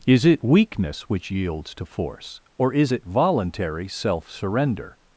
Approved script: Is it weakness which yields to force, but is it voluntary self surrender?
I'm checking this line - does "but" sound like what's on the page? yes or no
no